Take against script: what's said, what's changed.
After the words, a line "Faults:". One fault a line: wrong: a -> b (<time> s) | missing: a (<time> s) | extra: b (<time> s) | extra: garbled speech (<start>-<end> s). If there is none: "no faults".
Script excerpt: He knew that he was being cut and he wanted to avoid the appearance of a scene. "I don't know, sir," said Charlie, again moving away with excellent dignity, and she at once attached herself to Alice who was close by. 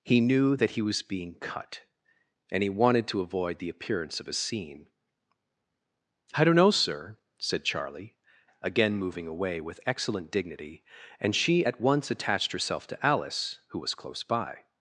He knew that he was being cut and he wanted to avoid the appearance of a scene. "I don't know, sir," said Charlie, again moving away with excellent dignity, and she at once attached herself to Alice who was close by.
Faults:
no faults